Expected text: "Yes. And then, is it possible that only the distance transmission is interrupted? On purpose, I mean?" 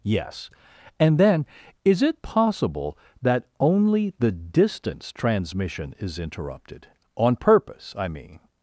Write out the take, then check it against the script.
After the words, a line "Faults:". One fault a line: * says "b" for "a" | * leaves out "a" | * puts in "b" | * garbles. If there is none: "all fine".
"Yes. And then, is it possible that only the distance transmission is interrupted? On purpose, I mean?"
Faults:
all fine